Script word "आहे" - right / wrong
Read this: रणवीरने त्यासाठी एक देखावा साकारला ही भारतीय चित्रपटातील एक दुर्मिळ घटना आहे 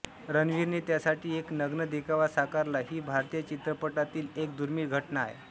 right